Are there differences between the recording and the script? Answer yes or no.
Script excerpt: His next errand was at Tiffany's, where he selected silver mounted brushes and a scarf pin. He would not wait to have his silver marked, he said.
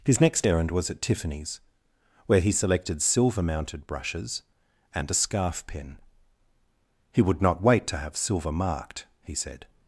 yes